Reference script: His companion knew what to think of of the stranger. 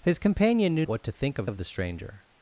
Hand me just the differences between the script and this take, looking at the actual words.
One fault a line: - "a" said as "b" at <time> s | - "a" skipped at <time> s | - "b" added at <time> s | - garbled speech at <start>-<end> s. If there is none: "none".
none